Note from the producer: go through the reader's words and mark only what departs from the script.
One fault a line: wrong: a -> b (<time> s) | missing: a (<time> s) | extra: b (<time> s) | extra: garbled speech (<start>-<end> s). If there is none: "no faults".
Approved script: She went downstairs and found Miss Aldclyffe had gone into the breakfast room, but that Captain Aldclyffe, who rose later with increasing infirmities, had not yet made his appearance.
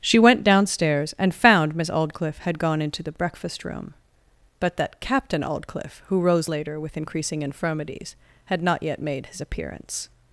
no faults